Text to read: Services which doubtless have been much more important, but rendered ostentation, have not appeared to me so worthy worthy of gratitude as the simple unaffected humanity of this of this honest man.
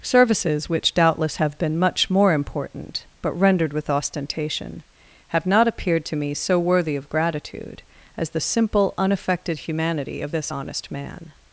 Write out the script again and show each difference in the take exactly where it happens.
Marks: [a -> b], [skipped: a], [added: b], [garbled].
Services which doubtless have been much more important, but rendered [added: with] ostentation, have not appeared to me so worthy [skipped: worthy] of gratitude as the simple unaffected humanity of this [skipped: of this] honest man.